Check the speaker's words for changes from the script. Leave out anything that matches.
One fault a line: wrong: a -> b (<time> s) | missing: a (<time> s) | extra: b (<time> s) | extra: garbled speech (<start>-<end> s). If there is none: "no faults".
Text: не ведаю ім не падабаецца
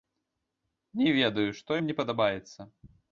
extra: што (1.6 s)